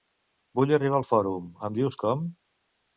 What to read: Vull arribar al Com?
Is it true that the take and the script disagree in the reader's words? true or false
true